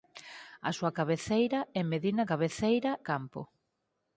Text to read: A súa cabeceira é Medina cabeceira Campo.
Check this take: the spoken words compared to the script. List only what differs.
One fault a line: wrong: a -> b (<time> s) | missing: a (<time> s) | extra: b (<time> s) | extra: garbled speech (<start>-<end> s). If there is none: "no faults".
no faults